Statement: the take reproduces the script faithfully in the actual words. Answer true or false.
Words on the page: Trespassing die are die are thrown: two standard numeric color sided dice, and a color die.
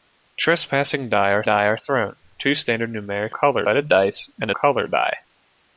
true